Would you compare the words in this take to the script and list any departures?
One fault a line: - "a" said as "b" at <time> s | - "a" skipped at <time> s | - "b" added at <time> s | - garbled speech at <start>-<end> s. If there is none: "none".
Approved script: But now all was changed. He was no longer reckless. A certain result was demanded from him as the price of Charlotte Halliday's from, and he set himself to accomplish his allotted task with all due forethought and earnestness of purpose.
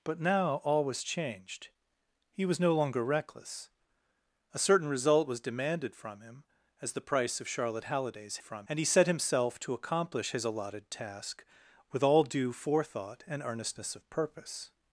none